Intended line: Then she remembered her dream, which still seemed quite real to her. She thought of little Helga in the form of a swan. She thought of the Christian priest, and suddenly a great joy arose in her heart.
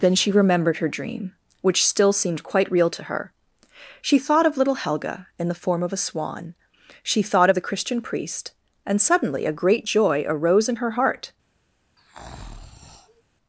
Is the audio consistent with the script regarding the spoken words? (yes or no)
yes